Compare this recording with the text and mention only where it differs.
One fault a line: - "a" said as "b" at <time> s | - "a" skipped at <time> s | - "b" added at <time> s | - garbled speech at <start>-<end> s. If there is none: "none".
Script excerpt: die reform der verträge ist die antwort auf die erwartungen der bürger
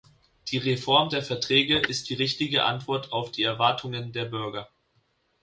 - "richtige" added at 2.1 s